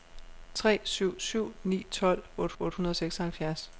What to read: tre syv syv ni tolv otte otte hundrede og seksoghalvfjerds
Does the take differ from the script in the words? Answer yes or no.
no